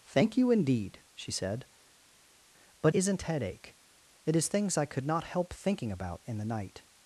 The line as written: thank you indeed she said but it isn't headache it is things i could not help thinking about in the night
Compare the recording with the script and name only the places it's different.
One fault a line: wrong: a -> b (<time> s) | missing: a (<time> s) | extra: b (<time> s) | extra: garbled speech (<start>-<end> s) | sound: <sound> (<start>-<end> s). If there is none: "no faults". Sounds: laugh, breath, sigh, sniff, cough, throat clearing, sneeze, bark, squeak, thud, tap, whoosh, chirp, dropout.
missing: it (2.9 s)